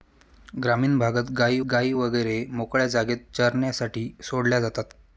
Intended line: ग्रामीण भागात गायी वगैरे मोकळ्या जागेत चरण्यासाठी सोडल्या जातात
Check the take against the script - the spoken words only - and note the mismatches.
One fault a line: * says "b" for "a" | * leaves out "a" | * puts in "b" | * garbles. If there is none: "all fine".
* puts in "गायी"